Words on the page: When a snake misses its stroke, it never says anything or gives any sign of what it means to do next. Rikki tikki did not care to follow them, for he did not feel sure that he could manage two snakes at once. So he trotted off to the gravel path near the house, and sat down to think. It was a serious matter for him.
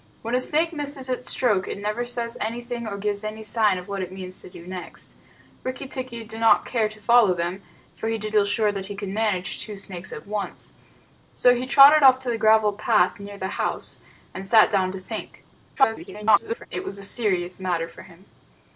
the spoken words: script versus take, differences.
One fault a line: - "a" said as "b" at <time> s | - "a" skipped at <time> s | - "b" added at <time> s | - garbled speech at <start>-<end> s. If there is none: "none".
- "not" skipped at 8.3 s
- garbled speech at 15.8-16.7 s